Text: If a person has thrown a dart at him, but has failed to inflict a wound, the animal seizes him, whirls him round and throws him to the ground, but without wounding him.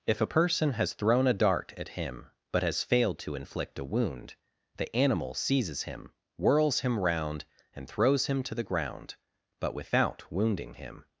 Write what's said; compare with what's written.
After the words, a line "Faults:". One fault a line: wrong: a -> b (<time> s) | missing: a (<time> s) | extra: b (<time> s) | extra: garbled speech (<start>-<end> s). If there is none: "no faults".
If a person has thrown a dart at him, but has failed to inflict a wound, the animal seizes him, whirls him round and throws him to the ground, but without wounding him.
Faults:
no faults